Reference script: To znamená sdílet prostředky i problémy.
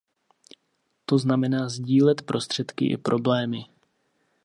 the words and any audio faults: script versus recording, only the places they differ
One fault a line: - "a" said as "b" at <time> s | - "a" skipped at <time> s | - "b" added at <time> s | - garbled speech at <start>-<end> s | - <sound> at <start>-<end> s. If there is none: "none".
none